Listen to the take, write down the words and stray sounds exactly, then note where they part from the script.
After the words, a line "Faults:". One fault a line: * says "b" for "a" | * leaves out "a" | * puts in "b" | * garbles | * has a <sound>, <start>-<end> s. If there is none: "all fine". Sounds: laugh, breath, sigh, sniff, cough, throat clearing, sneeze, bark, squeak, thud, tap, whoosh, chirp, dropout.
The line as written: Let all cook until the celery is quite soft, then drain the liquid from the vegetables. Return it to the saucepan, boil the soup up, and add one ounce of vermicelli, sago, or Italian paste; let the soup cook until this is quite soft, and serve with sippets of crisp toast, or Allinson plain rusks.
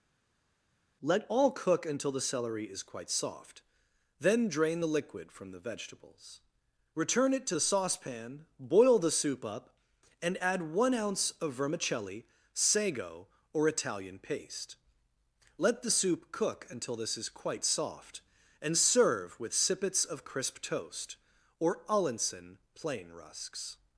Let all cook until the celery is quite soft, then drain the liquid from the vegetables. Return it to the saucepan, boil the soup up, and add one ounce of vermicelli, sago, or Italian paste; let the soup cook until this is quite soft, and serve with sippets of crisp toast, or Allinson plain rusks.
Faults:
all fine